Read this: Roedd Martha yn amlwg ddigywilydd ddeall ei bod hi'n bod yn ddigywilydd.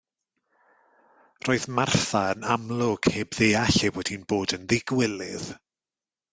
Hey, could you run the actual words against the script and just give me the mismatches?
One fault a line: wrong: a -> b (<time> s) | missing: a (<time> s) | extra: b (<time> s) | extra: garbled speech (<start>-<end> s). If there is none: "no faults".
wrong: ddigywilydd -> heb (3.2 s)